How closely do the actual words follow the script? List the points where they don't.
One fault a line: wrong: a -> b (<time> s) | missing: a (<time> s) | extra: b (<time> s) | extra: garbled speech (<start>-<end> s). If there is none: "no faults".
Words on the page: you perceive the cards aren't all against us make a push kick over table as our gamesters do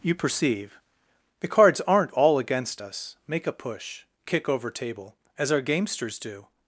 no faults